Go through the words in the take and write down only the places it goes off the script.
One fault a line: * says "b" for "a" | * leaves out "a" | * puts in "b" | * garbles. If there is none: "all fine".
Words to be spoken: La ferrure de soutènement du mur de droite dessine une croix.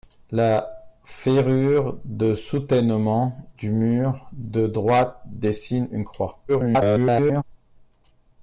* garbles